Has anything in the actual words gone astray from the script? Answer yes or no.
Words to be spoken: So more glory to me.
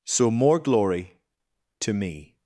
no